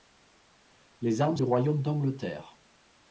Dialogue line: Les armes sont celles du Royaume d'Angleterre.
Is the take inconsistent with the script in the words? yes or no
yes